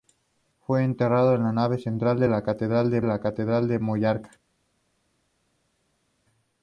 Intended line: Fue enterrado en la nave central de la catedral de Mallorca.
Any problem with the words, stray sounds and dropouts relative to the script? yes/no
yes